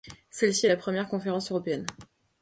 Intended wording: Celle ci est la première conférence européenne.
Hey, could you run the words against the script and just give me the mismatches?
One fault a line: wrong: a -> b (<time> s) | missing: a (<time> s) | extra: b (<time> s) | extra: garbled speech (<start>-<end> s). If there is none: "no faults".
no faults